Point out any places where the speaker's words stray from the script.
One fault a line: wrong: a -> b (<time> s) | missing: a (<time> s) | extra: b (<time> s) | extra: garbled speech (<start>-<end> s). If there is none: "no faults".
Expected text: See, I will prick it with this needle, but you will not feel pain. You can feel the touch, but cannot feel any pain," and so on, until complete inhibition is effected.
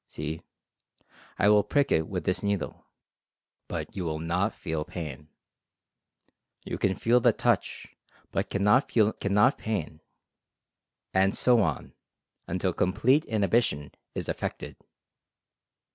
wrong: any -> cannot (9.2 s)